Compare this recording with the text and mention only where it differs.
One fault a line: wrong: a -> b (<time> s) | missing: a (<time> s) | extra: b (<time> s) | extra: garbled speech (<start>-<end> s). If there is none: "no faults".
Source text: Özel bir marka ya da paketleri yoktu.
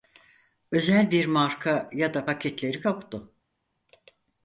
no faults